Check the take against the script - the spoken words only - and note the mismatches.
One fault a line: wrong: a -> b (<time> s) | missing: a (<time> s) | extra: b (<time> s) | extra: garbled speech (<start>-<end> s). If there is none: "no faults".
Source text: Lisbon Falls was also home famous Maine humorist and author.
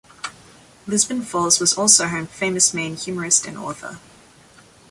no faults